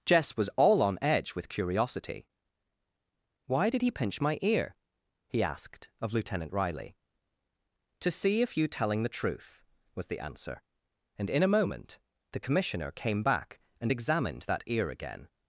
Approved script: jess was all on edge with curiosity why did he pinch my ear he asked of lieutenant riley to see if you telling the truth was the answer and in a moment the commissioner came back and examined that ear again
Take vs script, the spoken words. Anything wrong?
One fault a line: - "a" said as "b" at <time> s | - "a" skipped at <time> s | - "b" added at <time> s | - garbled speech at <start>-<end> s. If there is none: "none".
none